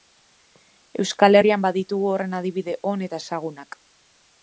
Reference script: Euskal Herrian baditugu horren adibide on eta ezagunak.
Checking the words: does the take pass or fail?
pass